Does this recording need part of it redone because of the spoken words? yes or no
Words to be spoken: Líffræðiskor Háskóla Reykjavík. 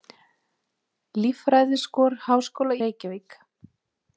no